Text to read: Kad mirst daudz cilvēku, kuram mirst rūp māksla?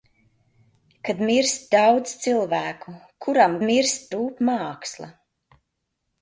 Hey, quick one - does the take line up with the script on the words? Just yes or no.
yes